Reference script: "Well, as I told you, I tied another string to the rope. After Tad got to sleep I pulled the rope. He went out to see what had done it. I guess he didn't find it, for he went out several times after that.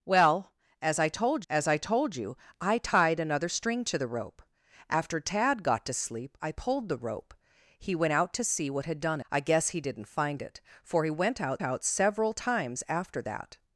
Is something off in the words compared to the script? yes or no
yes